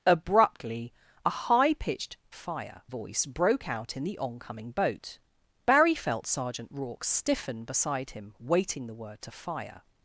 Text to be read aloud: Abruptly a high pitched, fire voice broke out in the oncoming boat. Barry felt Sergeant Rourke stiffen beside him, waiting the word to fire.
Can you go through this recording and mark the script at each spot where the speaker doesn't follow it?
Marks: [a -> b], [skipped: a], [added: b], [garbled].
Abruptly a high pitched, fire voice broke out in the oncoming boat. Barry felt Sergeant Rourke stiffen beside him, waiting the word to fire.